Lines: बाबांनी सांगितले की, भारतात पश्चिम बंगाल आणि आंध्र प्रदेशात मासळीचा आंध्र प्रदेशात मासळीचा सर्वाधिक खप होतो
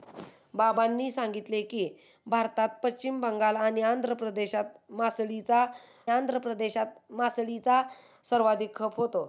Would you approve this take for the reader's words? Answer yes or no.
yes